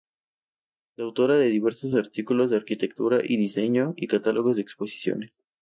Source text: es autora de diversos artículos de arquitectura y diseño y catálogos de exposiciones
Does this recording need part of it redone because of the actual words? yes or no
no